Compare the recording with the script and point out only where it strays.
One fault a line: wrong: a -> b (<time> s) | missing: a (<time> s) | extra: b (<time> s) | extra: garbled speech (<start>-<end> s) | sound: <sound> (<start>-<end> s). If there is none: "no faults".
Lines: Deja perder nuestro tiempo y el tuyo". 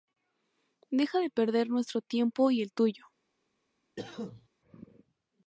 extra: de (1.2 s)
sound: cough (4.0-4.5 s)